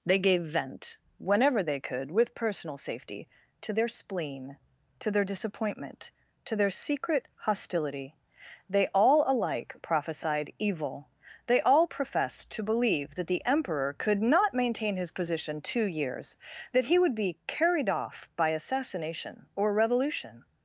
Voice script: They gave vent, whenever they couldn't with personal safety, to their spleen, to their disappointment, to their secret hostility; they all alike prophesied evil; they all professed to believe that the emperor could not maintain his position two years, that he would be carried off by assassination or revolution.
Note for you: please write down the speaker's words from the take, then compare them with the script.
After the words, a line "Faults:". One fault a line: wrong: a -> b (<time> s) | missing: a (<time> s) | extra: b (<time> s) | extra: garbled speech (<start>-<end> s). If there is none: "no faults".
They gave vent, whenever they could with personal safety, to their spleen, to their disappointment, to their secret hostility; they all alike prophesied evil; they all professed to believe that the emperor could not maintain his position two years, that he would be carried off by assassination or revolution.
Faults:
wrong: couldn't -> could (1.8 s)